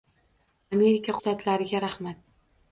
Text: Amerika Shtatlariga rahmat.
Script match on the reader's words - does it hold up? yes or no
yes